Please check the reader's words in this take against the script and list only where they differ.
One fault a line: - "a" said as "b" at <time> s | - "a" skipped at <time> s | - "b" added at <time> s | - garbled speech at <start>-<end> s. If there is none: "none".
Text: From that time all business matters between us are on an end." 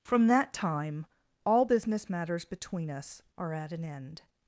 - "on" said as "at" at 3.5 s